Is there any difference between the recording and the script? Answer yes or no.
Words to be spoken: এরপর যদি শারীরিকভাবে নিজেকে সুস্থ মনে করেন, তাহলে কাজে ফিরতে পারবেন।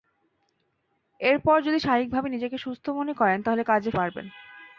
yes